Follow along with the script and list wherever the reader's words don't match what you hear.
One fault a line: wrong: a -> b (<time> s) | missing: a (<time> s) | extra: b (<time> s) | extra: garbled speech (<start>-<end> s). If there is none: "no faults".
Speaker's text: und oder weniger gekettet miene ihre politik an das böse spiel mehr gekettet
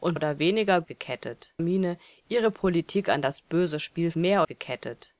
no faults